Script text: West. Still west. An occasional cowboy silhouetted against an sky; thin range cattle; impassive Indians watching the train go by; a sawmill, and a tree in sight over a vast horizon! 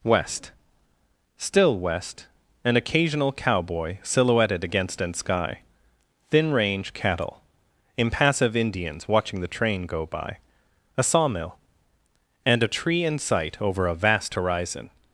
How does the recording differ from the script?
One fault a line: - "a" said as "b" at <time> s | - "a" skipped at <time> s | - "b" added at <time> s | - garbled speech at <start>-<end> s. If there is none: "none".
none